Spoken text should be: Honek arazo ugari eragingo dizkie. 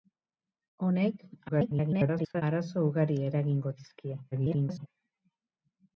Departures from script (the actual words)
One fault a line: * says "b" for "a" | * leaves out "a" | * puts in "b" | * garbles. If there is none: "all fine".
* garbles
* garbles